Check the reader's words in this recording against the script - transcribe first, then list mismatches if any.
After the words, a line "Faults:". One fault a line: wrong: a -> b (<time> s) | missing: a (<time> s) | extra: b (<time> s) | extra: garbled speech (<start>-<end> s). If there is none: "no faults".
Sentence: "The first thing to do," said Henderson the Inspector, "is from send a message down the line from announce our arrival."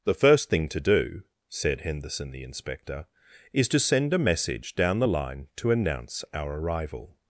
"The first thing to do," said Henderson the Inspector, "is to send a message down the line to announce our arrival."
Faults:
wrong: from -> to (3.7 s)
wrong: from -> to (5.6 s)